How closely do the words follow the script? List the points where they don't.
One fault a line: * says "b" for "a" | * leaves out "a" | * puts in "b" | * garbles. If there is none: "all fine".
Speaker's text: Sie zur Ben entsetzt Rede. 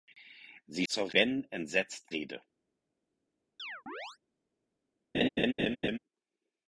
all fine